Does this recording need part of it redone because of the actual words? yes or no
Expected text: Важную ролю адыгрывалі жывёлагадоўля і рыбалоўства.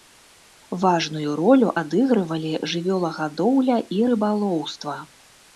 no